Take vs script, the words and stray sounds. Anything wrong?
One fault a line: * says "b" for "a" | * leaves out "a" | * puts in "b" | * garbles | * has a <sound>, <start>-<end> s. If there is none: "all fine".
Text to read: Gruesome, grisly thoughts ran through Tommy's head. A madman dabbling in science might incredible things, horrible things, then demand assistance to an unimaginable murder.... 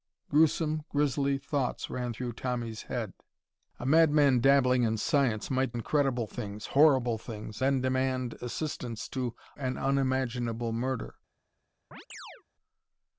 * has a chirp, 11.9-12.4 s